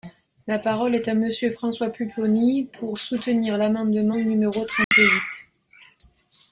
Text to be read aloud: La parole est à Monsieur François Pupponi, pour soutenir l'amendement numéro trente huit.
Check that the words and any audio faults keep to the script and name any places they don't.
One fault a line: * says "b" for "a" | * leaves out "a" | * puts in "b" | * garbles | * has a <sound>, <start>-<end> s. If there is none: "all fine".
* has a dropout, 4.8-4.9 s